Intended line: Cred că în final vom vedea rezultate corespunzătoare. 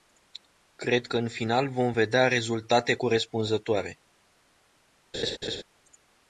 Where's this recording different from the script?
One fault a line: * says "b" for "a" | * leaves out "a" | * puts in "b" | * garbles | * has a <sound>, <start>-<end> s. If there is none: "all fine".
* has a laugh, 5.1-5.6 s